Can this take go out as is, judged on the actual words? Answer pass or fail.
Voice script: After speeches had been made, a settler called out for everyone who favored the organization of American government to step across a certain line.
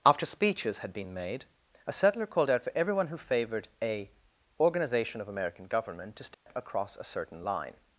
fail